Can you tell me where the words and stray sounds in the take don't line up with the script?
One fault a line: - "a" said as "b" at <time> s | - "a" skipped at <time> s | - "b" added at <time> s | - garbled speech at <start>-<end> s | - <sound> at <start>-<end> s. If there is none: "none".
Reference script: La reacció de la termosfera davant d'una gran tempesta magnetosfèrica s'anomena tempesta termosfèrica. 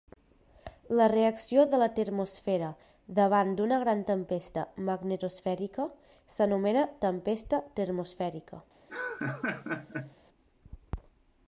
- laugh at 8.9-10.2 s